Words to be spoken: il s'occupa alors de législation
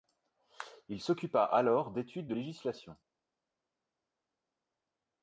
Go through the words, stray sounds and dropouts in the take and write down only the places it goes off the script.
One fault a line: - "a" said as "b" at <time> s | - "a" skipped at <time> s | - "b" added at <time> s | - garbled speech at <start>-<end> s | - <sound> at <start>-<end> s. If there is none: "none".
- "d'études" added at 1.9 s